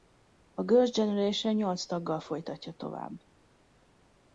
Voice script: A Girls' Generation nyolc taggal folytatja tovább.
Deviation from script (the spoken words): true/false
false